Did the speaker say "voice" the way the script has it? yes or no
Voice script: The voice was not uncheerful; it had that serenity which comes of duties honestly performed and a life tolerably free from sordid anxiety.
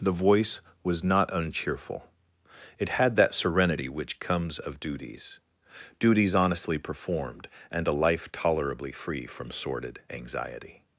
yes